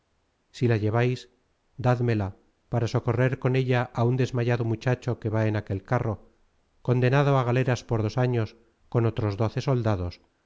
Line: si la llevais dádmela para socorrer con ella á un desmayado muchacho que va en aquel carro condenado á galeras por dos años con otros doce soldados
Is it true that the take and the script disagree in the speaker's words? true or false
false